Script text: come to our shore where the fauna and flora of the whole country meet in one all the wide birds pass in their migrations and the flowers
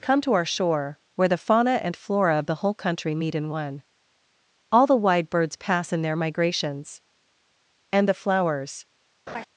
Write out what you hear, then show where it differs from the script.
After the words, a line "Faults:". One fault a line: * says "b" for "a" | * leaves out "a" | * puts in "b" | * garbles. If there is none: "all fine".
come to our shore where the fauna and flora of the whole country meet in one all the wide birds pass in their migrations and the flowers
Faults:
all fine